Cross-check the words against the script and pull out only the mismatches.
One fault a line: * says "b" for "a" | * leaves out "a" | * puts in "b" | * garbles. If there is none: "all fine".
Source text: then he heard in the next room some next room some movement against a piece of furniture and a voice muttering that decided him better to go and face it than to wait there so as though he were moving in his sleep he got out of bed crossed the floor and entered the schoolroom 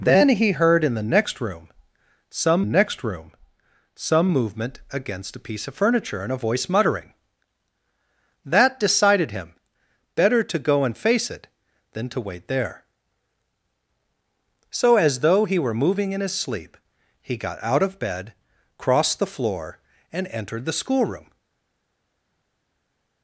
all fine